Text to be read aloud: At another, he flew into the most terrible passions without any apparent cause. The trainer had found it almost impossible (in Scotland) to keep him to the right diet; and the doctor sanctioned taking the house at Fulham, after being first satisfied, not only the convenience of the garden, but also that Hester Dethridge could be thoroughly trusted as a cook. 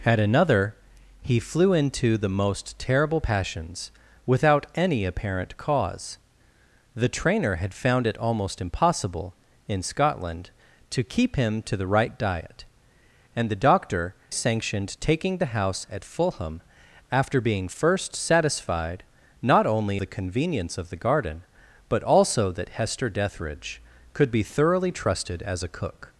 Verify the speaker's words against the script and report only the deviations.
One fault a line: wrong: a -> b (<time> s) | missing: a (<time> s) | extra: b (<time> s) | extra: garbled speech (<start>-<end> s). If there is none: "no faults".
no faults